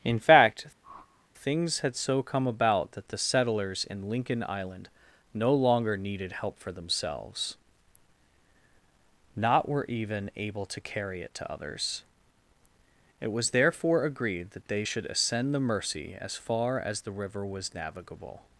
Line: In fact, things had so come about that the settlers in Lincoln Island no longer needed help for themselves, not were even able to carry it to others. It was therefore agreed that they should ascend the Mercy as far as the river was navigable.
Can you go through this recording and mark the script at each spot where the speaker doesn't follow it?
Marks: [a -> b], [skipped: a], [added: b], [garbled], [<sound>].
In fact, [whoosh] things had so come about that the settlers in Lincoln Island no longer needed help for themselves, not were even able to carry it to others. It was therefore agreed that they should ascend the Mercy as far as the river was navigable.